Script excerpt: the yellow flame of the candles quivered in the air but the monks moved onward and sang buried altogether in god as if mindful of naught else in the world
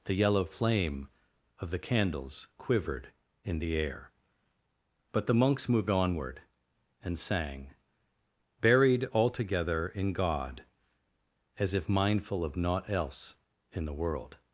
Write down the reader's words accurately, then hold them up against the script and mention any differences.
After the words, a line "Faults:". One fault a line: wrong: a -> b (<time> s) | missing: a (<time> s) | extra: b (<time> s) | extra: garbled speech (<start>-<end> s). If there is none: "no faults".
the yellow flame of the candles quivered in the air but the monks moved onward and sang buried altogether in god as if mindful of naught else in the world
Faults:
no faults